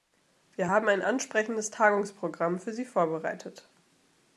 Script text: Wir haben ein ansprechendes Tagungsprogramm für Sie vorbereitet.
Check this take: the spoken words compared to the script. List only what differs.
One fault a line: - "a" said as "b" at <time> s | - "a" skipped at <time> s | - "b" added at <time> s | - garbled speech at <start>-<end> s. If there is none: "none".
none